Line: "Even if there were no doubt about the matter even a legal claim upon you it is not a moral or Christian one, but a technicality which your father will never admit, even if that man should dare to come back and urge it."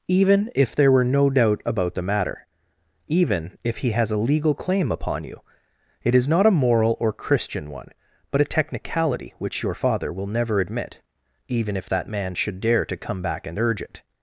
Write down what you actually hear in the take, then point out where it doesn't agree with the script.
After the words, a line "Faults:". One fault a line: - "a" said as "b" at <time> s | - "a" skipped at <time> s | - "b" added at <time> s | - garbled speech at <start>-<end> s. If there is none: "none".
"Even if there were no doubt about the matter even if he has a legal claim upon you it is not a moral or Christian one, but a technicality which your father will never admit, even if that man should dare to come back and urge it."
Faults:
- "if he has" added at 3.6 s